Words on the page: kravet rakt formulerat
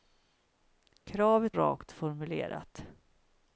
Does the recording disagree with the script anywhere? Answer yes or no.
no